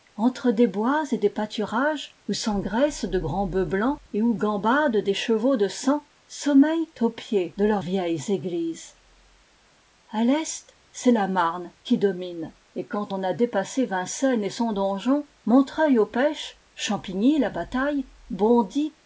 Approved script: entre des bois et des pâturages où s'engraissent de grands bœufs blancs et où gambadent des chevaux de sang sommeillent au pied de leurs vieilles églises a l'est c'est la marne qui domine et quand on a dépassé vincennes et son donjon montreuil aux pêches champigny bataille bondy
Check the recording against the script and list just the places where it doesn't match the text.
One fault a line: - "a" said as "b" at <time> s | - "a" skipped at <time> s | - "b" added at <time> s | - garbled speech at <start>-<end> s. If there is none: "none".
- "la" added at 17.4 s